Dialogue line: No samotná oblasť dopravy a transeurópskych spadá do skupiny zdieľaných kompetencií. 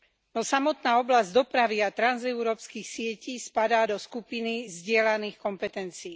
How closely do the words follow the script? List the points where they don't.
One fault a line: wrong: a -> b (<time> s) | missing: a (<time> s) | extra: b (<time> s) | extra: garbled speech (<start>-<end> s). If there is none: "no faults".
extra: sietí (2.9 s)